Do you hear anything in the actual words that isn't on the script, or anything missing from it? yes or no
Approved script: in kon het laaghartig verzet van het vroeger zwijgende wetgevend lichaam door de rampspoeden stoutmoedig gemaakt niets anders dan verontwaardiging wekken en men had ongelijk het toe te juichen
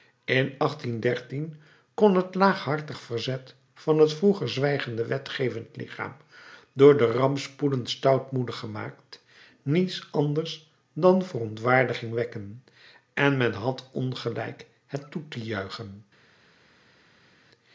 no